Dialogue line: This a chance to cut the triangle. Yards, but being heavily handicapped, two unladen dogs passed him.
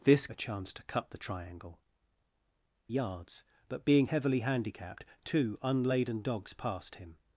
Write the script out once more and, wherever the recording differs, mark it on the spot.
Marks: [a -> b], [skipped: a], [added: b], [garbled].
This a chance to cut the triangle. Yards, but being heavily handicapped, two unladen dogs passed him.